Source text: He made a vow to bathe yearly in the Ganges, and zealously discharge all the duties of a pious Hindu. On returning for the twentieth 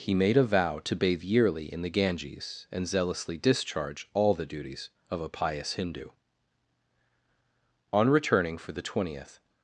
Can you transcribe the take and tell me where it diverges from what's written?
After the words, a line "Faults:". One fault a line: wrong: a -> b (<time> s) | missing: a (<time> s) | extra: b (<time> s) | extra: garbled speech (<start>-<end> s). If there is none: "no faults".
He made a vow to bathe yearly in the Ganges, and zealously discharge all the duties of a pious Hindu. On returning for the twentieth
Faults:
no faults